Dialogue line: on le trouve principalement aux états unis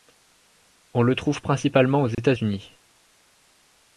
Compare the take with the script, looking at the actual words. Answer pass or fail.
pass